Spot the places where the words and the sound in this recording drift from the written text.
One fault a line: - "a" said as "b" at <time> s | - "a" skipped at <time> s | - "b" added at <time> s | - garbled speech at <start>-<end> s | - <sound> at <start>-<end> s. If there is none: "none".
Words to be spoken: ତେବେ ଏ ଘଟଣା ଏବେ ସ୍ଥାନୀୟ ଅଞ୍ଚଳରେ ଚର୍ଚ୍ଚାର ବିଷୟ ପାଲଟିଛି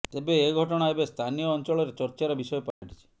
- dropout at 2.7-2.8 s